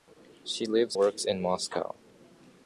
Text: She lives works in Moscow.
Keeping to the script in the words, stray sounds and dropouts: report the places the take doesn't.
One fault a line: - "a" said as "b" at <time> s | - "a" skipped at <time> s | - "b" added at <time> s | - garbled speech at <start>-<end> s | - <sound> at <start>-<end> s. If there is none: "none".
none